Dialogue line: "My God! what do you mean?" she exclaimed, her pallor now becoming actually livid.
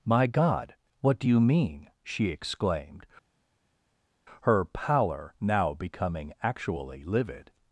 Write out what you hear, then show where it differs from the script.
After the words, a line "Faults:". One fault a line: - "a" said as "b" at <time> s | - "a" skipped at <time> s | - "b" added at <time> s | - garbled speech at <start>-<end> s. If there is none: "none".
"My God! what do you mean?" she exclaimed, her pallor now becoming actually livid.
Faults:
none